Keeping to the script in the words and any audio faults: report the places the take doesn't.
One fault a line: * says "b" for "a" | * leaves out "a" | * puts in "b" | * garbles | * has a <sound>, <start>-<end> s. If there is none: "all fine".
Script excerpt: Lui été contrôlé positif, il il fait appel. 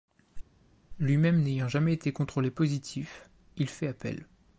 * puts in "même n'ayant jamais"
* leaves out "il"